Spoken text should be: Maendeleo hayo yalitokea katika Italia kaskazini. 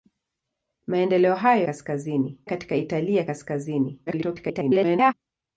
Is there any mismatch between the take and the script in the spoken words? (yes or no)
yes